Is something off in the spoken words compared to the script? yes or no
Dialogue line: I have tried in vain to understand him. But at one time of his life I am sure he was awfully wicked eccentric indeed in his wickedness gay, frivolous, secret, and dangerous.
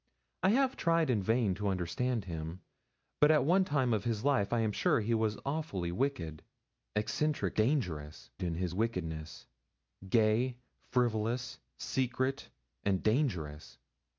yes